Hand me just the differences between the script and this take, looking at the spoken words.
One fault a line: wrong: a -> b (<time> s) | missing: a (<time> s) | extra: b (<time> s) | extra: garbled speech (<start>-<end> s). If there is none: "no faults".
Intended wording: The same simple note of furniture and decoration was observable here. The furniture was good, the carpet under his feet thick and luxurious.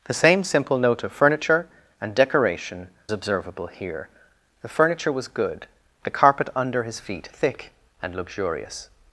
missing: was (2.9 s)